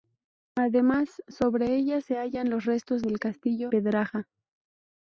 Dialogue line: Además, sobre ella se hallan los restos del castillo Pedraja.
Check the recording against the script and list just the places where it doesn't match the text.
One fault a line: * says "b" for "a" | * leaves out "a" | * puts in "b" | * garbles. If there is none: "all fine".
all fine